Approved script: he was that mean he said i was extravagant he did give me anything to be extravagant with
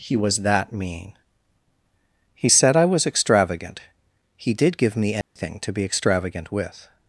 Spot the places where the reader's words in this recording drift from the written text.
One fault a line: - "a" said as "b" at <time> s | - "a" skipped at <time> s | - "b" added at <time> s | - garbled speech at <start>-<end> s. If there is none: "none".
none